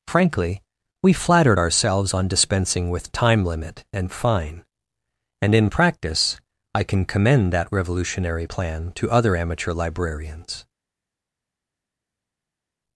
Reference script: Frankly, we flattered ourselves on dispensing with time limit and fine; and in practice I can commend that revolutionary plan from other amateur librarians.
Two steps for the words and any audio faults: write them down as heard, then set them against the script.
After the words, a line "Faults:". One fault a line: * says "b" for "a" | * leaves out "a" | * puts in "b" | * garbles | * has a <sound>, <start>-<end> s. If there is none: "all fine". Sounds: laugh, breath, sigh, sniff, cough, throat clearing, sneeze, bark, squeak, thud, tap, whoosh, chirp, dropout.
Frankly, we flattered ourselves on dispensing with time limit and fine; and in practice I can commend that revolutionary plan to other amateur librarians.
Faults:
* says "to" for "from"